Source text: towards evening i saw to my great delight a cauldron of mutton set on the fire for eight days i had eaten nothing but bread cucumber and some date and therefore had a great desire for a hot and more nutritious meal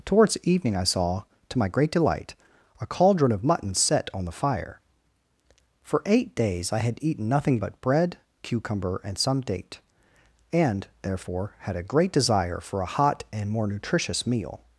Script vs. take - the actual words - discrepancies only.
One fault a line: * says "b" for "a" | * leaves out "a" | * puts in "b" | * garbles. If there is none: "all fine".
all fine